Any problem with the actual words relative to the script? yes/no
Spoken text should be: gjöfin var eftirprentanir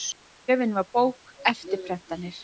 yes